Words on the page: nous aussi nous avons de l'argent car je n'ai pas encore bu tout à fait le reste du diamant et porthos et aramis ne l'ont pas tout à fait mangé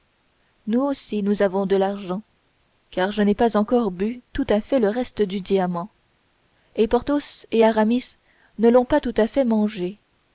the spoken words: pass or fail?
pass